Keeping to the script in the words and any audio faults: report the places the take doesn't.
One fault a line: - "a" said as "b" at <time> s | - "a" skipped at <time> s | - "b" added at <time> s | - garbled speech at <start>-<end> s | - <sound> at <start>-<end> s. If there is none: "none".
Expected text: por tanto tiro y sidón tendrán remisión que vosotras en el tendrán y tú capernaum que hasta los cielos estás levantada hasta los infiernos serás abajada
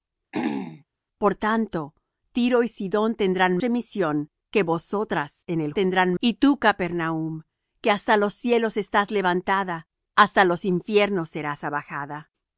- throat clearing at 0.3-0.8 s